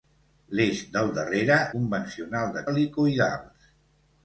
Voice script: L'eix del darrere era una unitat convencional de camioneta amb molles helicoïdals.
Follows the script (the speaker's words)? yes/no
no